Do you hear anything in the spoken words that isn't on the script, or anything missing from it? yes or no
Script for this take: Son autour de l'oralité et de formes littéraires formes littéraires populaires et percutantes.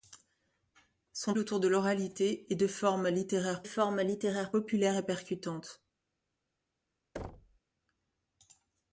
no